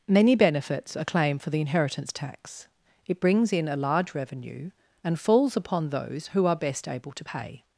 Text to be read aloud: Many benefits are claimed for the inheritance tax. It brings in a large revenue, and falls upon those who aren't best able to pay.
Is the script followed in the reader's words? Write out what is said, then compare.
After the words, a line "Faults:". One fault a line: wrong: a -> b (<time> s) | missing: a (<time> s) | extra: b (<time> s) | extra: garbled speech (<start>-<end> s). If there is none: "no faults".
Many benefits are claimed for the inheritance tax. It brings in a large revenue, and falls upon those who are best able to pay.
Faults:
wrong: aren't -> are (6.5 s)